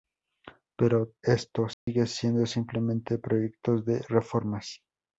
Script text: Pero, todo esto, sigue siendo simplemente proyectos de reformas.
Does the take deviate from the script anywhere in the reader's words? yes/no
yes